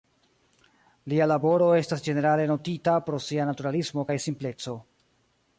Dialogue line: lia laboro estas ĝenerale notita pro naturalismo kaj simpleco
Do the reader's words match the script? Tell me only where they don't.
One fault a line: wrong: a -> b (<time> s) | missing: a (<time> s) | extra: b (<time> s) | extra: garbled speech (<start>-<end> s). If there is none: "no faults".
extra: sia (3.3 s)